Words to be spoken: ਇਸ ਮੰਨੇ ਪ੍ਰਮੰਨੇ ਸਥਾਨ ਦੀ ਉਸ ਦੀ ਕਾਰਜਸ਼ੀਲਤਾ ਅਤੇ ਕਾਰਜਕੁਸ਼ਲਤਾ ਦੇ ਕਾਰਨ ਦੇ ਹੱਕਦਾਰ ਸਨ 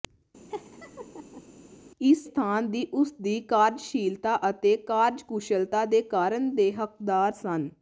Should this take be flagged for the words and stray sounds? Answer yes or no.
yes